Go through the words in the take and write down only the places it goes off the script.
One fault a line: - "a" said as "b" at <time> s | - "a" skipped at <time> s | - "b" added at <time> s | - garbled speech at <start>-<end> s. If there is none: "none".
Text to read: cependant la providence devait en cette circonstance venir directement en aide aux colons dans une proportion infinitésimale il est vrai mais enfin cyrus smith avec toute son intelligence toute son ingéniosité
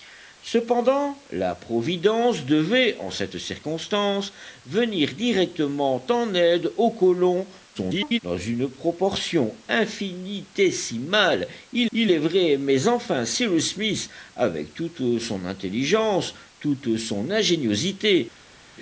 - garbled speech at 7.7-8.2 s
- "il" added at 11.9 s